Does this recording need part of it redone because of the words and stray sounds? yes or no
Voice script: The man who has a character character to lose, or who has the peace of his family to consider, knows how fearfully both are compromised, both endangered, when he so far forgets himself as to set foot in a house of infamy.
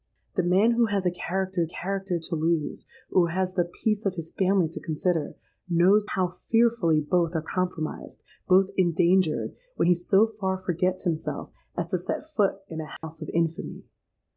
yes